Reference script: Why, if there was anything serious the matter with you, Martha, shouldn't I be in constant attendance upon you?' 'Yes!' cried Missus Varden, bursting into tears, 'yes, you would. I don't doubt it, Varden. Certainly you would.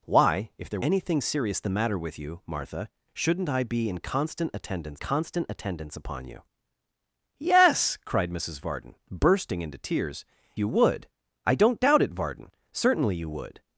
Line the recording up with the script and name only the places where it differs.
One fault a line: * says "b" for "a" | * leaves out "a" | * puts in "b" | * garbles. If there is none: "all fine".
* leaves out "was"
* puts in "constant attendance"
* leaves out "yes"